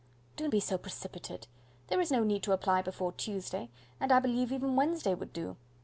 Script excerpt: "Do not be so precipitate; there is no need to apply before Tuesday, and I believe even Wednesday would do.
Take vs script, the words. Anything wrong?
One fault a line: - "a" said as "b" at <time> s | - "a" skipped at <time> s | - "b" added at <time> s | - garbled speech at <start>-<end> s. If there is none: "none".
- "not" skipped at 0.5 s